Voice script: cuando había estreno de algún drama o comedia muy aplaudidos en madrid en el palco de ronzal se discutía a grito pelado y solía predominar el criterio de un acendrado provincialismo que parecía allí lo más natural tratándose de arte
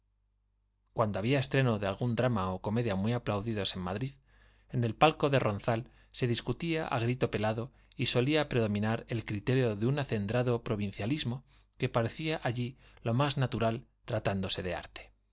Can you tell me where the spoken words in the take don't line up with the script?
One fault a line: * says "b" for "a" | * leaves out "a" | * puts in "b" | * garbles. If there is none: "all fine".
all fine